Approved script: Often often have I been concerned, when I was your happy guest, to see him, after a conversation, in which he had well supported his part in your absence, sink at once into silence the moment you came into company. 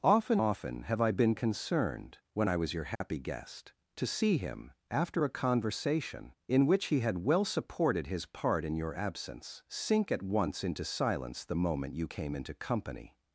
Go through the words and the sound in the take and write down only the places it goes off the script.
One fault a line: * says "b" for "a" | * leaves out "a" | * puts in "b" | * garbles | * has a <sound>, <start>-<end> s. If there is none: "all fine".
* has a dropout, 3.0-3.0 s